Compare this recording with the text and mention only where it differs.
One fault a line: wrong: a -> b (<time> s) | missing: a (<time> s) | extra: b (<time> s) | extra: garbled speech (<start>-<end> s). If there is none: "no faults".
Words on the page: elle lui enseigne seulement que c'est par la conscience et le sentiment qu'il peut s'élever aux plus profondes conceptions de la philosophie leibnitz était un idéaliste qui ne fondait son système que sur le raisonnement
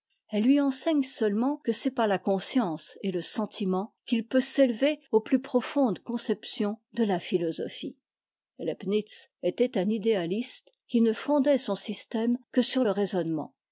no faults